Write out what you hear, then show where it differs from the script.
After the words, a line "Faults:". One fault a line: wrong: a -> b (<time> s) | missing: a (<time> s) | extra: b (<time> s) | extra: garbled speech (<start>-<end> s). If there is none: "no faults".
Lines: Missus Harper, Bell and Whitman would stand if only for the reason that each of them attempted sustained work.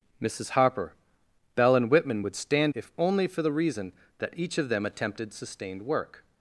Missus Harper, Bell and Whitman would stand if only for the reason that each of them attempted sustained work.
Faults:
no faults